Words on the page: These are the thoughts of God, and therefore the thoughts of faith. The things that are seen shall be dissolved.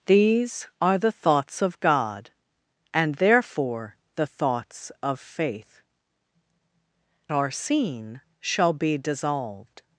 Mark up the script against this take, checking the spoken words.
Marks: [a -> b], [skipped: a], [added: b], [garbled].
These are the thoughts of God, and therefore the thoughts of faith. [skipped: The things that] are seen shall be dissolved.